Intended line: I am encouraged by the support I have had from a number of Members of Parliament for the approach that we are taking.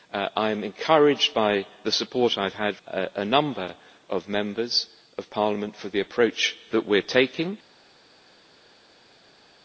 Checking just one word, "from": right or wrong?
wrong